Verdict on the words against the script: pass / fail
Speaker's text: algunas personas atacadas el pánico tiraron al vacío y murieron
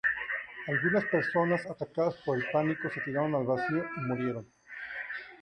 fail